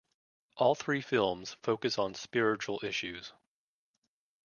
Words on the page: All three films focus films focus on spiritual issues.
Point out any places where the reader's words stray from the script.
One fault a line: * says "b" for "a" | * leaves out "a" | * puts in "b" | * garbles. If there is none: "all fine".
* leaves out "films focus"